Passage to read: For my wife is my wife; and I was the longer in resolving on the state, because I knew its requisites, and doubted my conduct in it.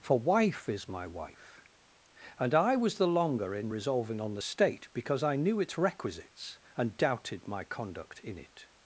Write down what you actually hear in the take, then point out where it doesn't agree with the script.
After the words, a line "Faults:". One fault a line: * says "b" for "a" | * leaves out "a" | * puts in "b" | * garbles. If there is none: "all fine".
For wife is my wife; and I was the longer in resolving on the state, because I knew its requisites, and doubted my conduct in it.
Faults:
* leaves out "my"